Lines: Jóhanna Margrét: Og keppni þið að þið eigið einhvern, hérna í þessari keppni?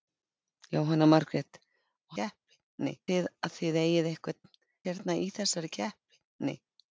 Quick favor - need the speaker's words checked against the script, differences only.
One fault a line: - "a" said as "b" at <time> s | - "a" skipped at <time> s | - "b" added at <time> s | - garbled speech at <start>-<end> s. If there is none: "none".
none